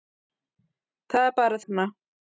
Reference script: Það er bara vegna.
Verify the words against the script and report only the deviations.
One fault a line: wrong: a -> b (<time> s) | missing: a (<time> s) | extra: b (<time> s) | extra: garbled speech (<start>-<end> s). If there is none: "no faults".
no faults